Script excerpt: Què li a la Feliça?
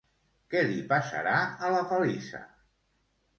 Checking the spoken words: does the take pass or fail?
fail